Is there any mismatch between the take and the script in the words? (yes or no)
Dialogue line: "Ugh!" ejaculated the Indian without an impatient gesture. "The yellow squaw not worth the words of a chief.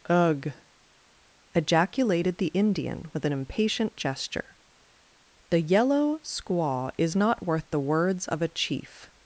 yes